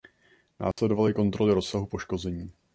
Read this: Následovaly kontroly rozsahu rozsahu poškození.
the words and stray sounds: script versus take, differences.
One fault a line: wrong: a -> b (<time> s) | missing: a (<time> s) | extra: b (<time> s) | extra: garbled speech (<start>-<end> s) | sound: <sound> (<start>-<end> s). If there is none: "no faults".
sound: dropout (0.7-0.8 s)
missing: rozsahu (1.9 s)